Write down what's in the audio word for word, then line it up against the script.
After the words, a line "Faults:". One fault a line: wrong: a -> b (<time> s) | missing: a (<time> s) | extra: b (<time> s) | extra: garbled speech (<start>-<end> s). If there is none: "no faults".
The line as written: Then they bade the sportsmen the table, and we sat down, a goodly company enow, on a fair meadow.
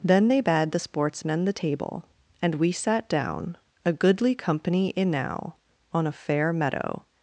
Then they bade the sportsmen the table, and we sat down, a goodly company enow, on a fair meadow.
Faults:
no faults